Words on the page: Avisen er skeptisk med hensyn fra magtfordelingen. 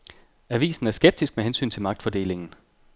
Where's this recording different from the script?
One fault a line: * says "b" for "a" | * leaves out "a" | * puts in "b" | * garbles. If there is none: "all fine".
* says "til" for "fra"